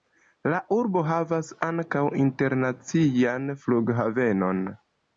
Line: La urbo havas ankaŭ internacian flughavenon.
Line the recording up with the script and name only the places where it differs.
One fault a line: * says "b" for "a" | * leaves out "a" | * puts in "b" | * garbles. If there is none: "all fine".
all fine